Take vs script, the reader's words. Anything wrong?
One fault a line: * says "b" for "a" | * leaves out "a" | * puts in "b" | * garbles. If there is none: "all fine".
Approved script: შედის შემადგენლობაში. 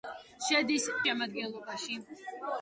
all fine